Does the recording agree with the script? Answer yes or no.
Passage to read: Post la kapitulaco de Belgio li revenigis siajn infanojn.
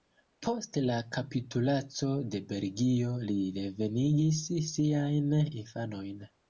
yes